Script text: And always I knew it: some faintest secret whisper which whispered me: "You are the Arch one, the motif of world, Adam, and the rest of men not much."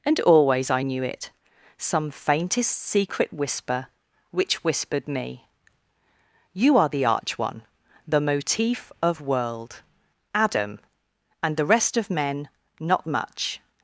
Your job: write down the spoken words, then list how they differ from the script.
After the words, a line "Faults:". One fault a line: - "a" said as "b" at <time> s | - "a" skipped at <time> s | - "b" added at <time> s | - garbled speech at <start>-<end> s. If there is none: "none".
And always I knew it: some faintest secret whisper which whispered me: "You are the Arch one, the motif of world, Adam, and the rest of men not much."
Faults:
none